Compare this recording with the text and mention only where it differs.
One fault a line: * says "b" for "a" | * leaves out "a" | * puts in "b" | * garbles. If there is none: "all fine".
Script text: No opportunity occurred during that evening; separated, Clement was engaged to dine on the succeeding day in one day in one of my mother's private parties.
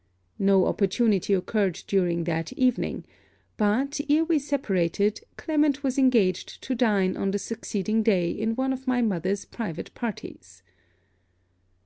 * puts in "but ere we"
* leaves out "day in one"